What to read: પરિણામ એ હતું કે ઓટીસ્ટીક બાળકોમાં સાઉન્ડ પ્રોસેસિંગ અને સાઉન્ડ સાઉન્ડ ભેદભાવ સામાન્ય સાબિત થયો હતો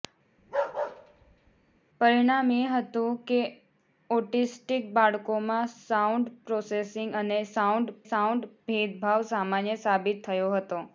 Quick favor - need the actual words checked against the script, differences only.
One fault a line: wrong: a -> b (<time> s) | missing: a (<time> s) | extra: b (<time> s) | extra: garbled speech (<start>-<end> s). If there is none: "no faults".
no faults